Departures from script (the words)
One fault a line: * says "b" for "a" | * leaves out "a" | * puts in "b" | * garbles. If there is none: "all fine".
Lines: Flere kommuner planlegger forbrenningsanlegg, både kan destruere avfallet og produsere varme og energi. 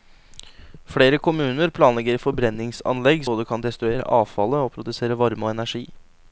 all fine